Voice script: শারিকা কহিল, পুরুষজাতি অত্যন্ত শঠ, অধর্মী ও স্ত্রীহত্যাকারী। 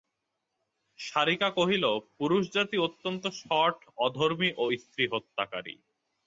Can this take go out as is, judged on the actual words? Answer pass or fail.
pass